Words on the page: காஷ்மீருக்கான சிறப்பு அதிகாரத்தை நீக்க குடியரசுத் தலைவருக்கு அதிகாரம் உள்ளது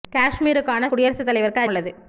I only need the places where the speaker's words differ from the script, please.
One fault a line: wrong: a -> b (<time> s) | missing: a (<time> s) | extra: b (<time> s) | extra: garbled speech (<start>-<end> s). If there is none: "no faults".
missing: சிறப்பு அதிகாரத்தை நீக்க (0.9 s)
missing: அதிகாரம் (1.7 s)